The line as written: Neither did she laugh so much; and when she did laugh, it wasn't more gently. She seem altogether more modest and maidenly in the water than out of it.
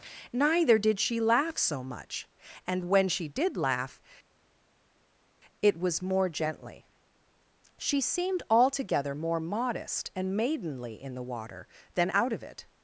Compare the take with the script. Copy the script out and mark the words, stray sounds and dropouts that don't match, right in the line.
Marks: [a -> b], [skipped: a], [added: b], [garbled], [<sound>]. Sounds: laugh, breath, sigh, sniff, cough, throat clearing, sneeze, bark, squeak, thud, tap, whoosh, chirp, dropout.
Neither did she laugh so much; and when she did laugh, it [wasn't -> was] more gently. She [seem -> seemed] altogether more modest and maidenly in the water than out of it.